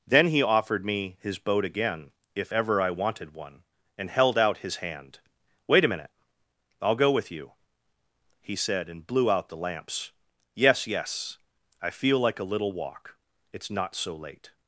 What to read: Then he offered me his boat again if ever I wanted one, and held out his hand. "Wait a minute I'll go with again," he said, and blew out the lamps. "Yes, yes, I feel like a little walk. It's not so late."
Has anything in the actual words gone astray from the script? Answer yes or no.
yes